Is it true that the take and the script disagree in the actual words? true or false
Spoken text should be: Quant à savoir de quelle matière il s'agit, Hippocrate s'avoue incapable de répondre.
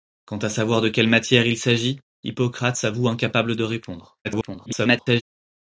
true